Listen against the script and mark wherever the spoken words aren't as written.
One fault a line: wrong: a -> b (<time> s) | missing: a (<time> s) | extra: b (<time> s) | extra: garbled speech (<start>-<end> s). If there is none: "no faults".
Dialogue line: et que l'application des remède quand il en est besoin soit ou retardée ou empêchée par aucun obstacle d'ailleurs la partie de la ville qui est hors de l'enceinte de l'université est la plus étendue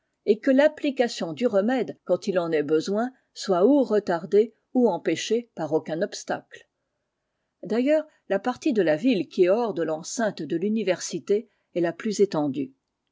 wrong: des -> du (1.3 s)